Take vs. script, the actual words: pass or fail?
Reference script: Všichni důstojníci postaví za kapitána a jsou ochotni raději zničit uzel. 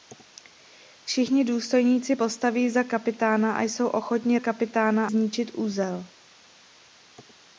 fail